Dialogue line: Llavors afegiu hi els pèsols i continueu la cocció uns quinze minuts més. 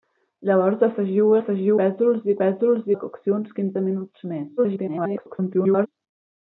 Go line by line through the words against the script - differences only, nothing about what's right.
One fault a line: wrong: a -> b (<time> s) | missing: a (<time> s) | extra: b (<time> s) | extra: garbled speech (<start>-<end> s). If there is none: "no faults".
wrong: els -> afegiu (1.4 s)
wrong: continueu -> pèsols (2.4 s)
extra: garbled speech (4.6-5.9 s)